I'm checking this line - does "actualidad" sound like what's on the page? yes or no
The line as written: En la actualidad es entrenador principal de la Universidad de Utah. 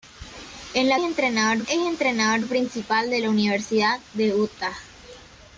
no